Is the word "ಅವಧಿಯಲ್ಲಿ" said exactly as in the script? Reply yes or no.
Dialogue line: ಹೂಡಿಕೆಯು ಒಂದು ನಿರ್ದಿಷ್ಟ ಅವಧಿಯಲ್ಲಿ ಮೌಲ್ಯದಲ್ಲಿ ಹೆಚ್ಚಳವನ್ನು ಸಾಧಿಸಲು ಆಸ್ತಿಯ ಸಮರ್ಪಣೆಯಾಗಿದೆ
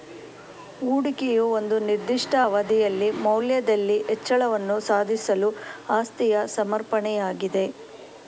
yes